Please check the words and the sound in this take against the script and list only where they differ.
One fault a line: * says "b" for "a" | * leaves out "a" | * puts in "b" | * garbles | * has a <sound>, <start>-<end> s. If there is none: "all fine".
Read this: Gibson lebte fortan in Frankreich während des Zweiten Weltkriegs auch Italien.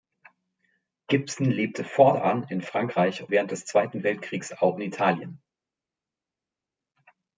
all fine